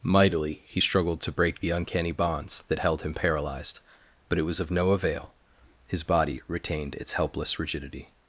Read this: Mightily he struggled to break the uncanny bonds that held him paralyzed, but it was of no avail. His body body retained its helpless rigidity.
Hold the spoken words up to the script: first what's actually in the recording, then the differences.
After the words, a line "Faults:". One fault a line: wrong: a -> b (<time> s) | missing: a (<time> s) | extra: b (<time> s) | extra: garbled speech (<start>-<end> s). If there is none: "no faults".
Mightily he struggled to break the uncanny bonds that held him paralyzed, but it was of no avail. His body retained its helpless rigidity.
Faults:
missing: body (6.4 s)